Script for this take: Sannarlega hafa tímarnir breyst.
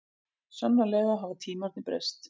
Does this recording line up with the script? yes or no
yes